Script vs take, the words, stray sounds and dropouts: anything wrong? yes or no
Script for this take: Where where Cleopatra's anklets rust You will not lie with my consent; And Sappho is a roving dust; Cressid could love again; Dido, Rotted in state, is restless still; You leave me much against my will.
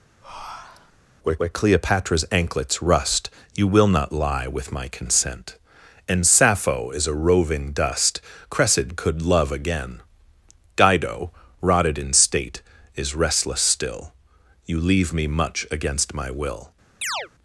yes